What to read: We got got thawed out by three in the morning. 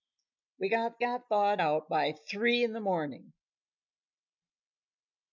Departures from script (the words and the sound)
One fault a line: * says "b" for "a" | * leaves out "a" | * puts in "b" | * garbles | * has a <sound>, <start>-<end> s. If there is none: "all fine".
all fine